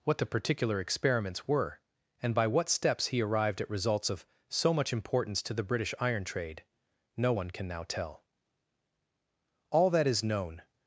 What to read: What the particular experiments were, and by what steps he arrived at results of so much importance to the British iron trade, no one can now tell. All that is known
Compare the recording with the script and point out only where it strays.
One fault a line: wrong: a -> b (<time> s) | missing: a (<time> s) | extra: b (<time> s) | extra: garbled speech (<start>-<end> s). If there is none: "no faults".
no faults